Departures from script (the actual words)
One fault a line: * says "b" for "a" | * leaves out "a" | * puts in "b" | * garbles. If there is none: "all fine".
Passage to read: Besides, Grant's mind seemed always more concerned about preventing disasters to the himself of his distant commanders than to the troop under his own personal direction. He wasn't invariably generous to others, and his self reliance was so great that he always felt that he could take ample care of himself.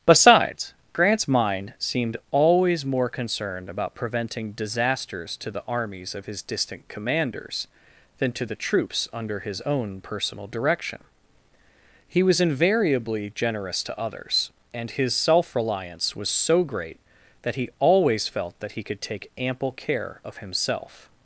* says "armies" for "himself"
* says "troops" for "troop"
* says "was" for "wasn't"